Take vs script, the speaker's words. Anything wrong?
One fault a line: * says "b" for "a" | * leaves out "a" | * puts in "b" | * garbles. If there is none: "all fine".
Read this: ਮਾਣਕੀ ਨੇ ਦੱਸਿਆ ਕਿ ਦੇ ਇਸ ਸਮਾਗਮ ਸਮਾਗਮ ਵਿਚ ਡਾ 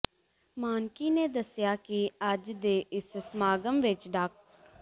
* puts in "ਅੱਜ"
* leaves out "ਸਮਾਗਮ"